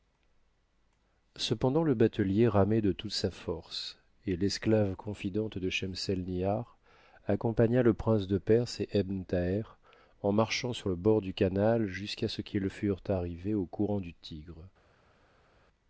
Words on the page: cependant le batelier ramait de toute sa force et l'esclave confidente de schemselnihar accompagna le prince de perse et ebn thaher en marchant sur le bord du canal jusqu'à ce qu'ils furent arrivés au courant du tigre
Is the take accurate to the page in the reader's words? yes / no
yes